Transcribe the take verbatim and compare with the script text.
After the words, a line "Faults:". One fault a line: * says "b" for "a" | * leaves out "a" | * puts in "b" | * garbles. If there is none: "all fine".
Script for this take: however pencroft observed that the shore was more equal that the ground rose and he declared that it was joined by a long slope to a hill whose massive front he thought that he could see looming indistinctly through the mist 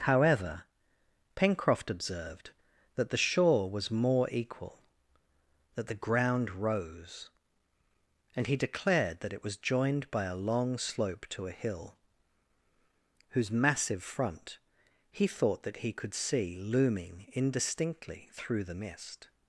however pencroft observed that the shore was more equal that the ground rose and he declared that it was joined by a long slope to a hill whose massive front he thought that he could see looming indistinctly through the mist
Faults:
all fine